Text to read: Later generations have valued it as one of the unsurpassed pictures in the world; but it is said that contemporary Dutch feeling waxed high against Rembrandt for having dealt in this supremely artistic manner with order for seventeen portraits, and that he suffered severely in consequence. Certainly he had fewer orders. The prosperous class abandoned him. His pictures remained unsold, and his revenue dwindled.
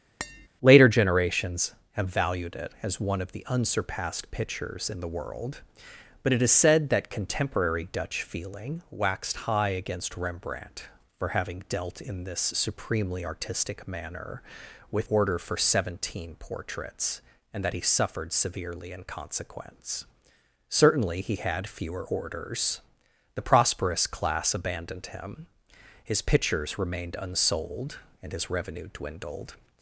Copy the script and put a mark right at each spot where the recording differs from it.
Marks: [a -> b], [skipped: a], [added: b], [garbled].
Later generations have valued it as one of the unsurpassed pictures in the world; but it is said that contemporary Dutch feeling waxed high against Rembrandt for having dealt in this supremely artistic manner with order for seventeen portraits, and that he suffered severely in consequence. Certainly he had fewer orders. The prosperous class abandoned him. His pictures remained unsold, and his revenue dwindled.